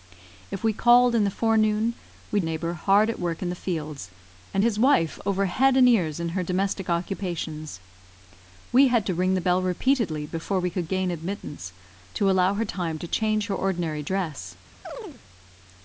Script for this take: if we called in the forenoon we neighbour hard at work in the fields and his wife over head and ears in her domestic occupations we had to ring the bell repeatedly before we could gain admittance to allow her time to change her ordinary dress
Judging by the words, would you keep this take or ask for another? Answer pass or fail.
pass